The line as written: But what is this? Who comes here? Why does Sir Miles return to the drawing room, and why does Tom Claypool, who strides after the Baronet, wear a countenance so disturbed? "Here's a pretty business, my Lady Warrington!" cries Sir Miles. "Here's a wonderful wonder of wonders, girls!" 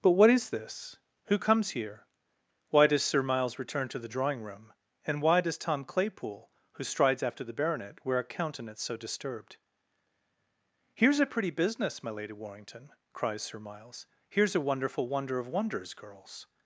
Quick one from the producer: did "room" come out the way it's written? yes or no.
yes